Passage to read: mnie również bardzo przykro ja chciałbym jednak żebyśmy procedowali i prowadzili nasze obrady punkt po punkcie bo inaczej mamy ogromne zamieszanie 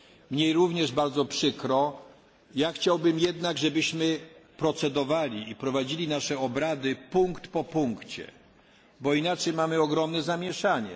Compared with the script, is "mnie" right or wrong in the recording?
right